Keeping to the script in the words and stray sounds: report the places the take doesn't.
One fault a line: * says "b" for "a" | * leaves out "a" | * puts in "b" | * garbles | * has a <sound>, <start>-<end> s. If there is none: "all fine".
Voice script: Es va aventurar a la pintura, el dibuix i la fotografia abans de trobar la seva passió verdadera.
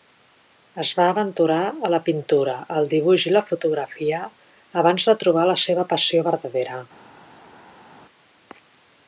all fine